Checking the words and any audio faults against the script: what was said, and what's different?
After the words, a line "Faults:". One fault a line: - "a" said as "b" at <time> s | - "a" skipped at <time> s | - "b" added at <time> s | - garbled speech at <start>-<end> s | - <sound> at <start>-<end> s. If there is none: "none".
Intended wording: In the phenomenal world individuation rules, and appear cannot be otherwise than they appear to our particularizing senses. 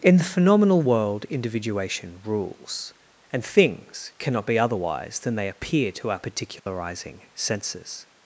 In the phenomenal world individuation rules, and things cannot be otherwise than they appear to our particularizing senses.
Faults:
- "appear" said as "things" at 3.5 s
- dropout at 6.6-6.7 s